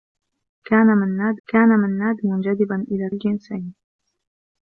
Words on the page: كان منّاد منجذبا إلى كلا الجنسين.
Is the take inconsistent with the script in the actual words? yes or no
yes